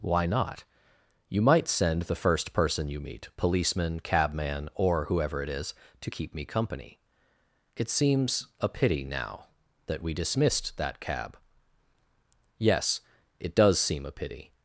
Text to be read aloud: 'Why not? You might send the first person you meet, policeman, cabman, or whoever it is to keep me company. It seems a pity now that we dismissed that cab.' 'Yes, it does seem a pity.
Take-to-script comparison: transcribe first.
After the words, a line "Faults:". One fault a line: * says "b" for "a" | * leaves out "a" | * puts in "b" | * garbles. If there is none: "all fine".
'Why not? You might send the first person you meet, policeman, cabman, or whoever it is to keep me company. It seems a pity now that we dismissed that cab.' 'Yes, it does seem a pity.
Faults:
all fine